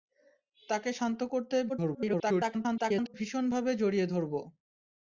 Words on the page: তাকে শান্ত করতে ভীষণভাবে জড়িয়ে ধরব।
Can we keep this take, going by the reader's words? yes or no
no